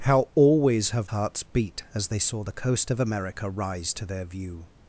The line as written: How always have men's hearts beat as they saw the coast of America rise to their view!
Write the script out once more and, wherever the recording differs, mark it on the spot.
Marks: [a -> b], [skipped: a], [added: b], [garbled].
How always have [skipped: men's] hearts beat as they saw the coast of America rise to their view!